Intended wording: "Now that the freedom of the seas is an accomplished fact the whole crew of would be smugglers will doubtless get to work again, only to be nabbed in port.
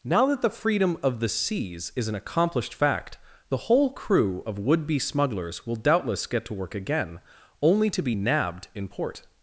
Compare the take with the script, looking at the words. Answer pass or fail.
pass